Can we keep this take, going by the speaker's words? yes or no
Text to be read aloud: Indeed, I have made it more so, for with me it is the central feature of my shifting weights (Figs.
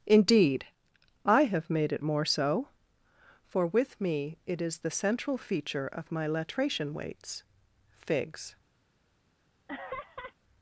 no